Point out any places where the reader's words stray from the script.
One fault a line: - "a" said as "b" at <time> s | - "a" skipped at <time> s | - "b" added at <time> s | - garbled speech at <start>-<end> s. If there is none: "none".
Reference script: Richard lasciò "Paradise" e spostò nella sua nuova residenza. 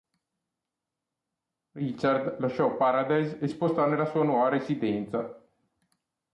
none